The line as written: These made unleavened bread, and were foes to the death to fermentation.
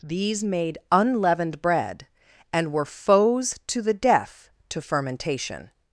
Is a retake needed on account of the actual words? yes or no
no